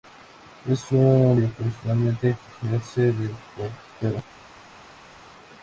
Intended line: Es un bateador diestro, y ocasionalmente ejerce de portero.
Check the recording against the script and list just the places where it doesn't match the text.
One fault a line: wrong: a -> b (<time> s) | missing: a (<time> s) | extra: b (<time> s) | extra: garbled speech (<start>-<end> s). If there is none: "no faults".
missing: bateador diestro (1.4 s)